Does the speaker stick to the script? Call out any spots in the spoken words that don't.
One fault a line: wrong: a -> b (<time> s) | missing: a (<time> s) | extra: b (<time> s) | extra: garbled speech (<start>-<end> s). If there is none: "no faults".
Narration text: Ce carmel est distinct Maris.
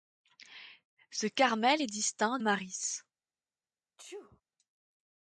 no faults